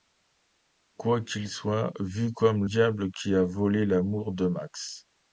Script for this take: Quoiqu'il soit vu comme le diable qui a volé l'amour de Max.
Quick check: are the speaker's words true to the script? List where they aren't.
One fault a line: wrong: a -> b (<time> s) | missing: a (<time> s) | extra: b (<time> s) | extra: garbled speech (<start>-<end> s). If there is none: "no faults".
missing: le (2.6 s)